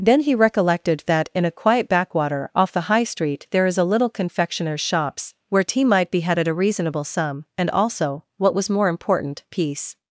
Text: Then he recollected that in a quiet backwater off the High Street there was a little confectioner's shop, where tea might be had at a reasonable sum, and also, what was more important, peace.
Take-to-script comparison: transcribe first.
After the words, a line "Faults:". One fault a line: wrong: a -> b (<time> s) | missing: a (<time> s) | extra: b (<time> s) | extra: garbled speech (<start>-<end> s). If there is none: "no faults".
Then he recollected that in a quiet backwater off the High Street there is a little confectioner's shops, where tea might be had at a reasonable sum, and also, what was more important, peace.
Faults:
wrong: was -> is (3.7 s)
wrong: shop -> shops (4.8 s)